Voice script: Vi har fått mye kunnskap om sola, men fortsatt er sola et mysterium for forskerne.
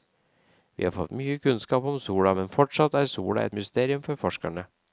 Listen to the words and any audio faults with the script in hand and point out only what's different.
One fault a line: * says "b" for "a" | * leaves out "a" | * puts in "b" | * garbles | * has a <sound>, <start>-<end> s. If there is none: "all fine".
all fine